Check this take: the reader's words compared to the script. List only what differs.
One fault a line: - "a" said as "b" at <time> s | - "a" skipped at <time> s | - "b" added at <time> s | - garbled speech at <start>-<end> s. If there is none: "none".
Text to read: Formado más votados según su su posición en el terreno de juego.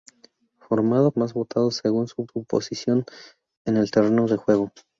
none